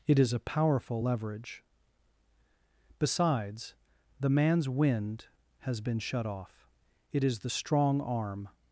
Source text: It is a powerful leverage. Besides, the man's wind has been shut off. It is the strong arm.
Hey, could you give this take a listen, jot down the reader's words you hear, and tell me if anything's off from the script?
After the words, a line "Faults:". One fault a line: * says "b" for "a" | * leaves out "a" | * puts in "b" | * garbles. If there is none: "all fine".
It is a powerful leverage. Besides, the man's wind has been shut off. It is the strong arm.
Faults:
all fine